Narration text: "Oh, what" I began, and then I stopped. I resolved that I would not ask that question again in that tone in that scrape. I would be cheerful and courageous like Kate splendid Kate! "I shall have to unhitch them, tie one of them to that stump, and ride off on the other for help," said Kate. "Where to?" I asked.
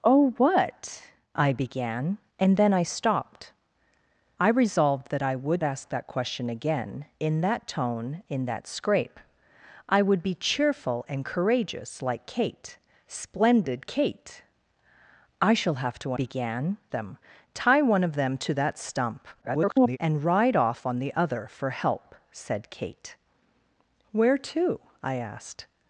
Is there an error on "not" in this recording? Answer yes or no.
yes